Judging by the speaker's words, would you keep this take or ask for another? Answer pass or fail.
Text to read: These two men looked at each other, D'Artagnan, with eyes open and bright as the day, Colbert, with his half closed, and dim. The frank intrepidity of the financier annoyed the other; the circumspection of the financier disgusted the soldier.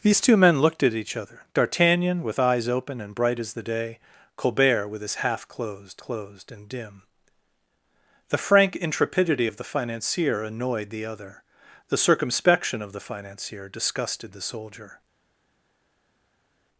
fail